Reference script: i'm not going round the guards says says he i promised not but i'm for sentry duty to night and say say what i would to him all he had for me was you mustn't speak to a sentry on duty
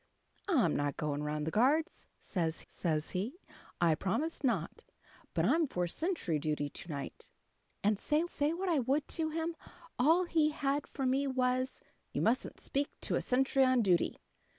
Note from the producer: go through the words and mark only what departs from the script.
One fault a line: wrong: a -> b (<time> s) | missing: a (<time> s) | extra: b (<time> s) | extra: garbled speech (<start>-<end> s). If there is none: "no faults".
no faults